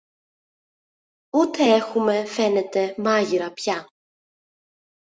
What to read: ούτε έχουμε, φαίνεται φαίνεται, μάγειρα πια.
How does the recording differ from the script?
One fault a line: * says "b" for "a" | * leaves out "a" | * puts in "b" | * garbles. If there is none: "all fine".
* leaves out "φαίνεται"